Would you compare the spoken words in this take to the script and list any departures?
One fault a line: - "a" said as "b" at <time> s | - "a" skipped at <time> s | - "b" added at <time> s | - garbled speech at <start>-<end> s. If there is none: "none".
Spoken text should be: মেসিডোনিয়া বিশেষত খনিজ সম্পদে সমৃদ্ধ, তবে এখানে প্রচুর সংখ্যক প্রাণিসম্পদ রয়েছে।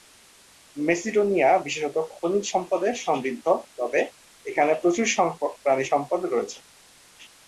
none